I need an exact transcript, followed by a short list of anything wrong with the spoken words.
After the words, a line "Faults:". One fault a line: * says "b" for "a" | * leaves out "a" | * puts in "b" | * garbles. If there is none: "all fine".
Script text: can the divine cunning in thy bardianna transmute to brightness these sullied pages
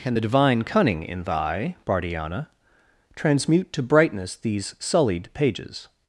can the divine cunning in thy bardianna transmute to brightness these sullied pages
Faults:
all fine